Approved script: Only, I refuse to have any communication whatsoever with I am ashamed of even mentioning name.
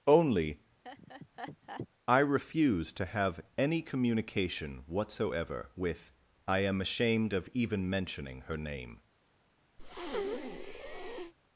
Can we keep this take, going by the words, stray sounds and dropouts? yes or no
no